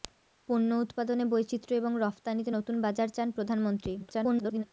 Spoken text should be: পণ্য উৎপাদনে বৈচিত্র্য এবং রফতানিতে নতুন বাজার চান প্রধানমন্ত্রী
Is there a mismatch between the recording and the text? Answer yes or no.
yes